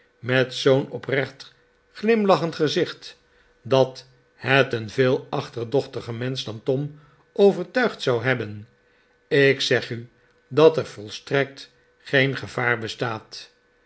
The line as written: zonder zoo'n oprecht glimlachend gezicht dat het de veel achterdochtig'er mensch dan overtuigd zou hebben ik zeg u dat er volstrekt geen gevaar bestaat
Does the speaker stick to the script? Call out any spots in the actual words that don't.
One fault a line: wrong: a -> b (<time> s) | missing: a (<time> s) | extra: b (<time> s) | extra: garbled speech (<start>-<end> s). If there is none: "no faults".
wrong: zonder -> met (0.2 s)
wrong: de -> een (4.7 s)
extra: tom (6.6 s)